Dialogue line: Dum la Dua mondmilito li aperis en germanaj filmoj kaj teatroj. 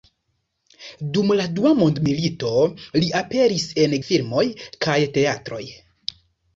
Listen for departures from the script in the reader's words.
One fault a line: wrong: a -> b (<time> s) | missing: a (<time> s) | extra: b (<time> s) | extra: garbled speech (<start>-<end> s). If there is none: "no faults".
missing: germanaj (4.0 s)